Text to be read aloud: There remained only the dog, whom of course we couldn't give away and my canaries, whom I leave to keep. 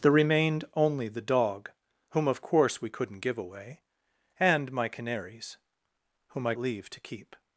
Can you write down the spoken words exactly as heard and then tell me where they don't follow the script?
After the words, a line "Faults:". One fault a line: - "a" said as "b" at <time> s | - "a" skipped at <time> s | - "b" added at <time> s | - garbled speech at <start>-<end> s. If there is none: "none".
There remained only the dog, whom of course we couldn't give away and my canaries, whom I leave to keep.
Faults:
none